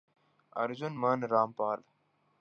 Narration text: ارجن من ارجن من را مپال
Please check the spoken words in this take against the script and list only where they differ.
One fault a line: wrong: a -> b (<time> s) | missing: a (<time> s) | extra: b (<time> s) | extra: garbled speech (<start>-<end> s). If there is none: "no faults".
missing: ارجن من (1.3 s)